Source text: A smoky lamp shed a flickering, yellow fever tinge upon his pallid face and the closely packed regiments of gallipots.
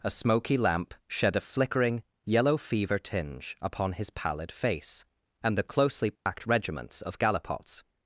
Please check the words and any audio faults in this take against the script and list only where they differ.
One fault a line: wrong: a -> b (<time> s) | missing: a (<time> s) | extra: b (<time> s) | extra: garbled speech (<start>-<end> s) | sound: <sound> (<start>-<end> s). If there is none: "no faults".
sound: dropout (6.2-6.3 s)